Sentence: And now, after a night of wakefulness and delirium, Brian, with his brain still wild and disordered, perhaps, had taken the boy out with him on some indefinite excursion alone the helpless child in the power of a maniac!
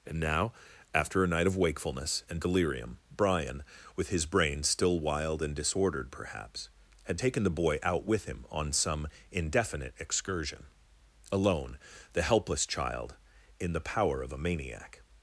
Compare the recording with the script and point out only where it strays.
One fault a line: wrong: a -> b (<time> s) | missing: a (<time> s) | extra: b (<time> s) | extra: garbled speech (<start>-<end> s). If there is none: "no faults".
no faults